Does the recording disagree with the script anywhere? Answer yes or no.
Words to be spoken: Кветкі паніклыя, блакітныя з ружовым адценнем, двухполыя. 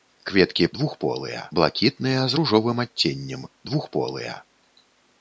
yes